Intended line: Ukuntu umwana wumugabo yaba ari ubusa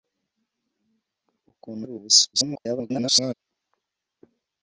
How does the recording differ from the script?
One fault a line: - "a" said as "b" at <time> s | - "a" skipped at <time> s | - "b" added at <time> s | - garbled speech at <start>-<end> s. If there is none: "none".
- "umwana wumugabo yaba" skipped at 1.8 s
- garbled speech at 2.3-3.3 s